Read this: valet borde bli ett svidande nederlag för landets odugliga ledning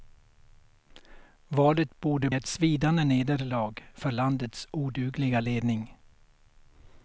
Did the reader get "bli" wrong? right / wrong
wrong